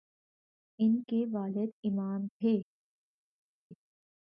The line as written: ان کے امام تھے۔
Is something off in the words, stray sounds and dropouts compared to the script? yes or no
yes